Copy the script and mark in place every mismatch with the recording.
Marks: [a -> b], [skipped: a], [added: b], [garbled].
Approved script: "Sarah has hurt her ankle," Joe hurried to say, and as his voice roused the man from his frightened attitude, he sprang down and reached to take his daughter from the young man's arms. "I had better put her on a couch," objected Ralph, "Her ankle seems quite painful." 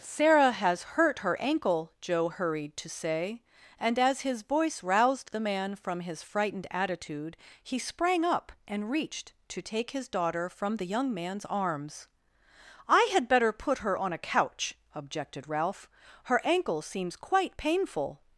"Sarah has hurt her ankle," Joe hurried to say, and as his voice roused the man from his frightened attitude, he sprang [down -> up] and reached to take his daughter from the young man's arms. "I had better put her on a couch," objected Ralph, "Her ankle seems quite painful."